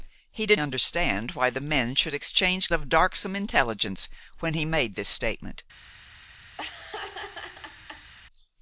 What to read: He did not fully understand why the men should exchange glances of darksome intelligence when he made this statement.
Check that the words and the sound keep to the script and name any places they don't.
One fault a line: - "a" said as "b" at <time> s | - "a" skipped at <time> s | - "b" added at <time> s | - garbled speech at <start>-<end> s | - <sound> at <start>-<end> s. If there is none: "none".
- "not fully" skipped at 0.6 s
- "glances" skipped at 2.7 s
- laugh at 6.6-8.1 s